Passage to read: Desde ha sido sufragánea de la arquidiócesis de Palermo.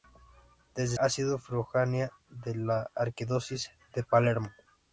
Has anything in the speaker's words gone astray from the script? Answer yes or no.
no